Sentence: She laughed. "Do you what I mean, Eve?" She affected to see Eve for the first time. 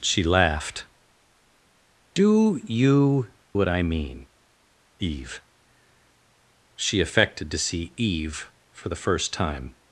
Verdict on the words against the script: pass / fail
pass